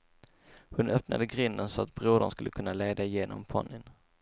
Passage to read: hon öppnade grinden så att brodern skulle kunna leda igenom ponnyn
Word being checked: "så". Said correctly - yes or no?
yes